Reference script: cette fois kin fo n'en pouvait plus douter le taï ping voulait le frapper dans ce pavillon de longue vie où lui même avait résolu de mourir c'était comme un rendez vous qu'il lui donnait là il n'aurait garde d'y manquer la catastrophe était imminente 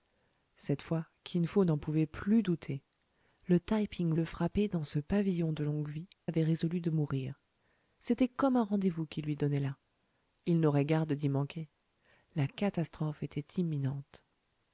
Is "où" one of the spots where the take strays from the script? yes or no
yes